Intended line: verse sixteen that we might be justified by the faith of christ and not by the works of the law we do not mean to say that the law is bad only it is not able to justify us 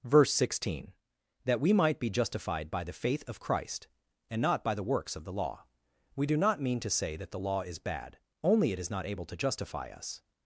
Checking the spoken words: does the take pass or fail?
pass